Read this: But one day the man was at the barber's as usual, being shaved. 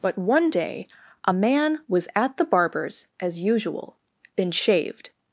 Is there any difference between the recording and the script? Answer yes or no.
yes